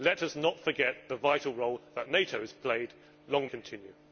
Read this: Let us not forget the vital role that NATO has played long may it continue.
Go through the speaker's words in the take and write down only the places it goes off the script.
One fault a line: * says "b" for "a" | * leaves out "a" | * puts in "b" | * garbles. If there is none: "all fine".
* leaves out "may it"